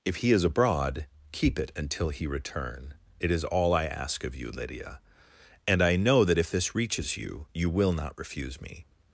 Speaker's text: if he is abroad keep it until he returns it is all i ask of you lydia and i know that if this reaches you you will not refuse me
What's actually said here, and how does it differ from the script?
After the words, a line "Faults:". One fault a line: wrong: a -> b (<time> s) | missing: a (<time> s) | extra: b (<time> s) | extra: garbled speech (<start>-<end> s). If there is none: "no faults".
if he is abroad keep it until he return it is all i ask of you lydia and i know that if this reaches you you will not refuse me
Faults:
wrong: returns -> return (2.2 s)